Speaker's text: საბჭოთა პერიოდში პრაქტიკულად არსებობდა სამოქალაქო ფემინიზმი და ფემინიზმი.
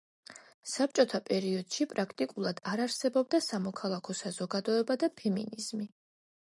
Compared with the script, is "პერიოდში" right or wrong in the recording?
right